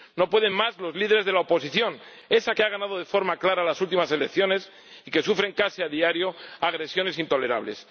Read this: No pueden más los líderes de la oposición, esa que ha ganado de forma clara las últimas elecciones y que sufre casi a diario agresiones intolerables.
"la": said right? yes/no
yes